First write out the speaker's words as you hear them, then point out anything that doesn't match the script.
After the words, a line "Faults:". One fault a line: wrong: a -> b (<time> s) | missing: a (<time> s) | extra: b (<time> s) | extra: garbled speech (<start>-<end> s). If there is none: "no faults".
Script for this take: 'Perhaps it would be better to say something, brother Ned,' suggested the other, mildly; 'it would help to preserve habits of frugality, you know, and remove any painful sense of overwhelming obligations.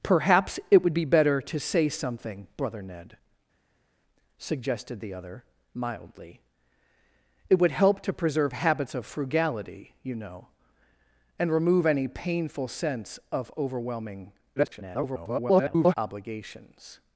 'Perhaps it would be better to say something, brother Ned,' suggested the other, mildly; 'it would help to preserve habits of frugality, you know, and remove any painful sense of overwhelming [garbled] obligations.
Faults:
extra: garbled speech (14.6-15.9 s)